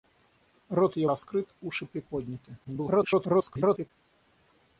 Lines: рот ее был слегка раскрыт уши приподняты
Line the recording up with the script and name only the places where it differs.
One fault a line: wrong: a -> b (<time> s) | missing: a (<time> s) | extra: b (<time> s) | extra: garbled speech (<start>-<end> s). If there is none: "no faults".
missing: был слегка (1.1 s)
extra: garbled speech (2.6-3.9 s)